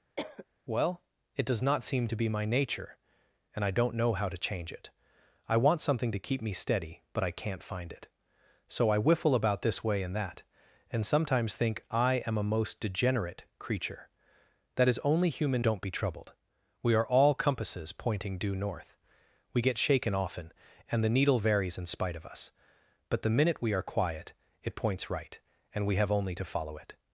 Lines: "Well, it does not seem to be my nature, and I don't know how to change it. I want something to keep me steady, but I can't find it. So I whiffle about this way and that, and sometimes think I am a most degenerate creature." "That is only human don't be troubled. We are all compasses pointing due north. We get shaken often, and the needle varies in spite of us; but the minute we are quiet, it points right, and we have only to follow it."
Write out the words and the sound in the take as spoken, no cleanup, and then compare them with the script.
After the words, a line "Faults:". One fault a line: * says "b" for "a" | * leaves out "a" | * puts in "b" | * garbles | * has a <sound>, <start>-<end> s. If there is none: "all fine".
"Well, it does not seem to be my nature, and I don't know how to change it. I want something to keep me steady, but I can't find it. So I whiffle about this way and that, and sometimes think I am a most degenerate creature." "That is only human don't be troubled. We are all compasses pointing due north. We get shaken often, and the needle varies in spite of us; but the minute we are quiet, it points right, and we have only to follow it."
Faults:
* has a cough, 0.2-0.5 s